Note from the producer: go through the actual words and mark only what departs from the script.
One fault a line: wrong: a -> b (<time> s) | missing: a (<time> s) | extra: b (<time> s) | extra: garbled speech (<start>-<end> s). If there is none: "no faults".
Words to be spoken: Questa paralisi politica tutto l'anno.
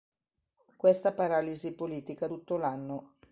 no faults